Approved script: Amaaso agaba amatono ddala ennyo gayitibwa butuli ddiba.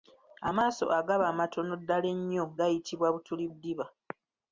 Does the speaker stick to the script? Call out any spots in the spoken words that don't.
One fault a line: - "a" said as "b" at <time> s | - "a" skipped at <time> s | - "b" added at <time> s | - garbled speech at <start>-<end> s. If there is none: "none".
none